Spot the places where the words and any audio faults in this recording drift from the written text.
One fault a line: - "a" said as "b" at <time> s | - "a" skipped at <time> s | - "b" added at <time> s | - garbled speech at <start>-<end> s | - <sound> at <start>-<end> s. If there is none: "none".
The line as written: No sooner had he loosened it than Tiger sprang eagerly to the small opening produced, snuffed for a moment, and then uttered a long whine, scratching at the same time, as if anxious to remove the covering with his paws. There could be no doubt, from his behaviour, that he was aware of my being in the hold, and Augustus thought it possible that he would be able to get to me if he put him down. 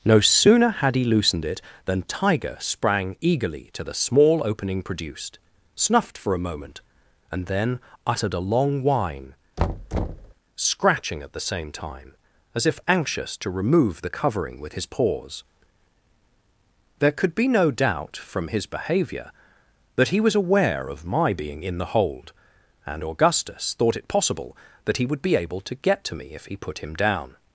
- thud at 9.6-10.3 s